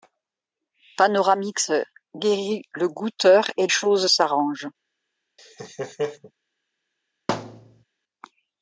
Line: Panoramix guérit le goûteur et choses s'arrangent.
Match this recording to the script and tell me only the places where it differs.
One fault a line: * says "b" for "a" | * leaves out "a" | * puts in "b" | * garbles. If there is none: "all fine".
all fine